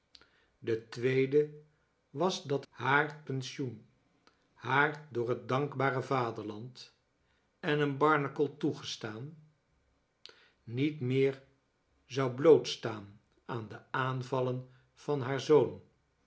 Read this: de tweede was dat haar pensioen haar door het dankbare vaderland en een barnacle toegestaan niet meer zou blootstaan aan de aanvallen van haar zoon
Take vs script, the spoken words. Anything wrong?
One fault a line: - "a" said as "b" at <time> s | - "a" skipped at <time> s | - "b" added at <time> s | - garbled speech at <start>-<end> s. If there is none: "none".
none